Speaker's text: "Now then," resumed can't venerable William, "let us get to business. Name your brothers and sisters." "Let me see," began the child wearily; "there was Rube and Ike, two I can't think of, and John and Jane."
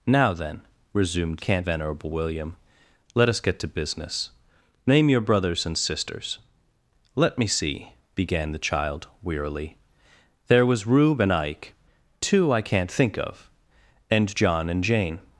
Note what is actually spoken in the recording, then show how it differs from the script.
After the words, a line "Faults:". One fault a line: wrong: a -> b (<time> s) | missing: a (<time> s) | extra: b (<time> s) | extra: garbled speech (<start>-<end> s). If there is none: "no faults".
"Now then," resumed can't venerable William, "let us get to business. Name your brothers and sisters." "Let me see," began the child wearily; "there was Rube and Ike, two I can't think of, and John and Jane."
Faults:
no faults